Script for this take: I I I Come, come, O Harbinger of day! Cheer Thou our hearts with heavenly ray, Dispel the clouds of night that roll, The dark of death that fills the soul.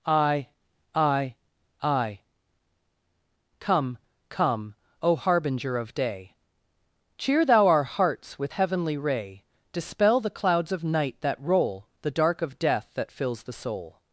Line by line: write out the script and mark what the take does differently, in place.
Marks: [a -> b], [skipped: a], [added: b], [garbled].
I I I Come, come, O Harbinger of day! Cheer Thou our hearts with heavenly ray, Dispel the clouds of night that roll, The dark of death that fills the soul.